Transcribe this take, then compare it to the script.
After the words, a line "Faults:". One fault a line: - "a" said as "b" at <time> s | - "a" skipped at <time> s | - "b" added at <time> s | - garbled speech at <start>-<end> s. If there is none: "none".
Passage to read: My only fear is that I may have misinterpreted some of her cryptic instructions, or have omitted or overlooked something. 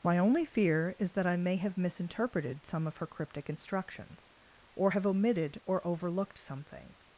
My only fear is that I may have misinterpreted some of her cryptic instructions, or have omitted or overlooked something.
Faults:
none